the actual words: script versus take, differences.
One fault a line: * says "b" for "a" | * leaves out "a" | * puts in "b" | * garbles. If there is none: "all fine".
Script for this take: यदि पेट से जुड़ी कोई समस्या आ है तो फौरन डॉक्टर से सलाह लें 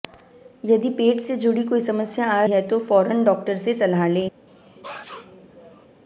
all fine